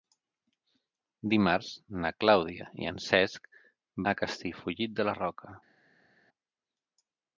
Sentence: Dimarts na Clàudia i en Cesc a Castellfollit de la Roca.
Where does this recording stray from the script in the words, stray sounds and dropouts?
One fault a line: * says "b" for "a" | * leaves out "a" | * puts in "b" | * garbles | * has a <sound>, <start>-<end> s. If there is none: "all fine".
all fine